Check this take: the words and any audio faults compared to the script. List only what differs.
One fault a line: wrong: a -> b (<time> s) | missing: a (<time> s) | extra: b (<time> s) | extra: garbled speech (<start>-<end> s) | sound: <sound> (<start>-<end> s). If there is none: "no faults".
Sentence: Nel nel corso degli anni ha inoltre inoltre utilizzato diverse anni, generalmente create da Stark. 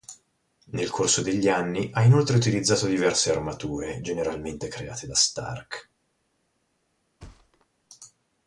missing: nel (0.9 s)
missing: inoltre (2.4 s)
wrong: anni -> armature (3.3 s)
sound: thud (7.2-7.7 s)